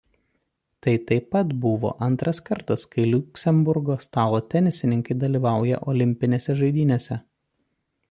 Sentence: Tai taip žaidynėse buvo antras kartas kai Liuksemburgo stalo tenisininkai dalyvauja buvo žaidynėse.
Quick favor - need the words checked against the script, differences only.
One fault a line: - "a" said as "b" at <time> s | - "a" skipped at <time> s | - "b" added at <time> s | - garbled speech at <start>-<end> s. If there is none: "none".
- "žaidynėse" said as "pat" at 1.4 s
- "buvo" said as "olimpinėse" at 6.0 s